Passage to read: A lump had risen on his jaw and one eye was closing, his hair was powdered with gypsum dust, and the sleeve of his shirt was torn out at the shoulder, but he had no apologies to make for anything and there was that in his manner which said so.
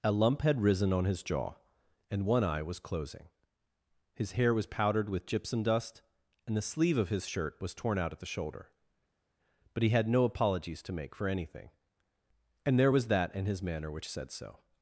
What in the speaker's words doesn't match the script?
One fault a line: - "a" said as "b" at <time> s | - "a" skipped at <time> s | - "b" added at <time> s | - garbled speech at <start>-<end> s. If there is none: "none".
none